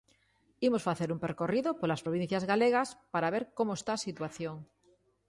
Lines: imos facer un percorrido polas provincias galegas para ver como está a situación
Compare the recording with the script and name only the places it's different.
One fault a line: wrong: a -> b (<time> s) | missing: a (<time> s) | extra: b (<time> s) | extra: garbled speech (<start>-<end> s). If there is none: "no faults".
no faults